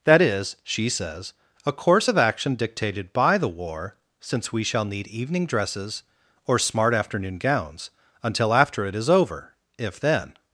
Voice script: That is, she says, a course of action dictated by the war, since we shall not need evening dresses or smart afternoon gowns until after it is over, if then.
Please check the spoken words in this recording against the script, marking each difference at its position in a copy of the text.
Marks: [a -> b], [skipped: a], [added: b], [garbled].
That is, she says, a course of action dictated by the war, since we shall [skipped: not] need evening dresses or smart afternoon gowns until after it is over, if then.